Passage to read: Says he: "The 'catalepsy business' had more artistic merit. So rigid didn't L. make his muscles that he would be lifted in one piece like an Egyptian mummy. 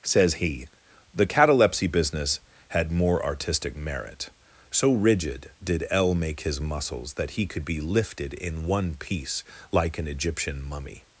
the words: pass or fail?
fail